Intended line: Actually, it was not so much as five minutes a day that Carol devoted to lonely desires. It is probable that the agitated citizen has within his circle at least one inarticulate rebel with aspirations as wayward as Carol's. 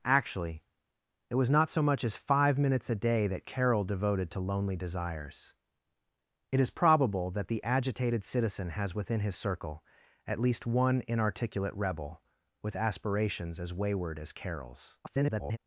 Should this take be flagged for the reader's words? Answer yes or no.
yes